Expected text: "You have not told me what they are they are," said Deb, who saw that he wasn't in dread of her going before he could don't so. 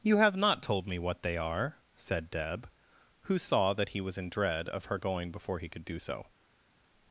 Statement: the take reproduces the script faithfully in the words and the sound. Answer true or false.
false